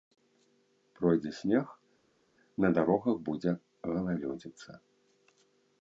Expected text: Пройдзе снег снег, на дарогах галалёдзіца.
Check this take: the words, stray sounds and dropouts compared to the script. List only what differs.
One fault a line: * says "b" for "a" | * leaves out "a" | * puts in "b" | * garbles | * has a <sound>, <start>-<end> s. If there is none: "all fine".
* leaves out "снег"
* puts in "будзе"